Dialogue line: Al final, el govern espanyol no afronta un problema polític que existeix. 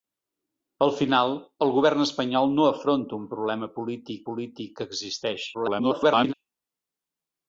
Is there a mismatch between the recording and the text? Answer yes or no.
yes